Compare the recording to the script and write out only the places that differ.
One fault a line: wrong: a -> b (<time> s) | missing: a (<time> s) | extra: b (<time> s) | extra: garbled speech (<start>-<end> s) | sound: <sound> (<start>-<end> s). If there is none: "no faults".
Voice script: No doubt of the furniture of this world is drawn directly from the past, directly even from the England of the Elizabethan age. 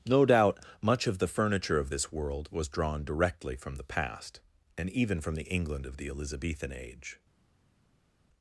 extra: much (0.8 s)
wrong: is -> was (2.5 s)
wrong: directly -> and (4.8 s)